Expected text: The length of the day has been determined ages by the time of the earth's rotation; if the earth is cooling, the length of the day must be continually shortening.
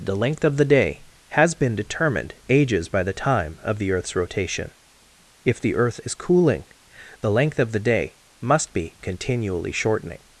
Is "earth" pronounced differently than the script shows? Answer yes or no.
no